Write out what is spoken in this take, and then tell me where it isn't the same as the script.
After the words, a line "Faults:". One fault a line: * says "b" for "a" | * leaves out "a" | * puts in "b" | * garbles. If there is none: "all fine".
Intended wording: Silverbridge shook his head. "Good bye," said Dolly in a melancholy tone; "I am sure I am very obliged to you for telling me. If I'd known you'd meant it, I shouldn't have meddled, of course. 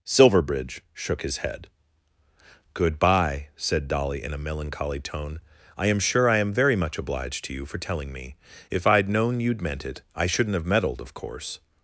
Silverbridge shook his head. "Good bye," said Dolly in a melancholy tone; "I am sure I am very much obliged to you for telling me. If I'd known you'd meant it, I shouldn't have meddled, of course.
Faults:
* puts in "much"